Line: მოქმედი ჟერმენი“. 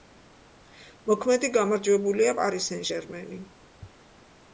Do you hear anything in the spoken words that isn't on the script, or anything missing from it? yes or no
yes